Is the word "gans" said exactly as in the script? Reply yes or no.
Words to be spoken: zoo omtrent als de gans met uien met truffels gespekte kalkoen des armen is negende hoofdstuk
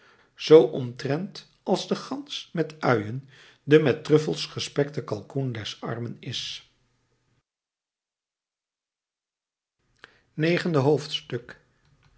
yes